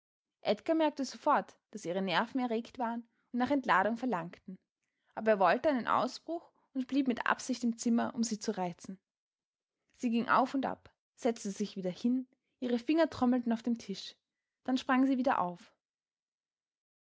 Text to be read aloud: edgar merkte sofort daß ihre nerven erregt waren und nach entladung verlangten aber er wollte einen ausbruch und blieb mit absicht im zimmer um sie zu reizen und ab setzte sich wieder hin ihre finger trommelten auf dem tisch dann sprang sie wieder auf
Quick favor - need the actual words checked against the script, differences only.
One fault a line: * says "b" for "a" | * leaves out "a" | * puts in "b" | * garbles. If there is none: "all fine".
* puts in "sie ging auf"